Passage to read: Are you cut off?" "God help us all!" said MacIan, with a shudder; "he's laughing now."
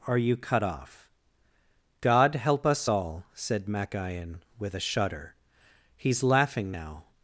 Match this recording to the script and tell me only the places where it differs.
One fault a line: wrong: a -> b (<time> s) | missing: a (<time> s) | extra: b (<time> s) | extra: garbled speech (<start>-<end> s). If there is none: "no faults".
no faults